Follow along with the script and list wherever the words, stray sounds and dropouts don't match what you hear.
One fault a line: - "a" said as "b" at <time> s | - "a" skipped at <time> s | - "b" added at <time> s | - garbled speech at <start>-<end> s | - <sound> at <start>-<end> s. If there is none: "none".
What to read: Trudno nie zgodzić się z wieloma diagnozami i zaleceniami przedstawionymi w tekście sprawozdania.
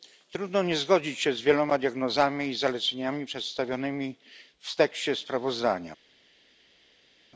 none